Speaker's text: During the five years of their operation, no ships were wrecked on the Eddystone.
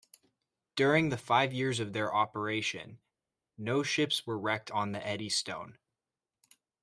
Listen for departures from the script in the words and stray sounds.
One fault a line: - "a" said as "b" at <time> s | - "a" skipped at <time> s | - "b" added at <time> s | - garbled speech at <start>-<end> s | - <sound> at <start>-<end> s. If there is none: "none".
none